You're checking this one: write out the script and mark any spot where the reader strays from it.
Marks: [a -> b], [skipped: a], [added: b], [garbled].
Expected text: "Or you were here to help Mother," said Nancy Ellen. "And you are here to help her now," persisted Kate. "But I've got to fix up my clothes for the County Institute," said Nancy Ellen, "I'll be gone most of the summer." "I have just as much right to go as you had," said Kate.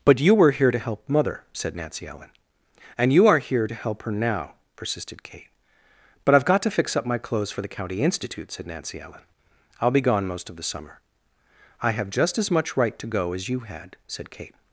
["Or -> But] you were here to help Mother," said Nancy Ellen. "And you are here to help her now," persisted Kate. "But I've got to fix up my clothes for the County Institute," said Nancy Ellen, "I'll be gone most of the summer." "I have just as much right to go as you had," said Kate.